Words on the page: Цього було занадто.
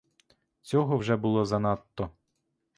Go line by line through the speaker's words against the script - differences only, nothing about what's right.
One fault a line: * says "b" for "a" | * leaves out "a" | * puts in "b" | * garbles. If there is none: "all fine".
* puts in "вже"